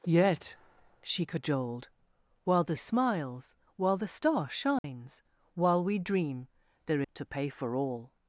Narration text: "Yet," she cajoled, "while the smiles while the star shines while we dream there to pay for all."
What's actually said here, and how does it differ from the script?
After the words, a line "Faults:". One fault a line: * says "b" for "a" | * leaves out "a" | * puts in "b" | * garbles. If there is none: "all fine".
"Yet," she cajoled, "while the smiles while the star shines while we dream there to pay for all."
Faults:
all fine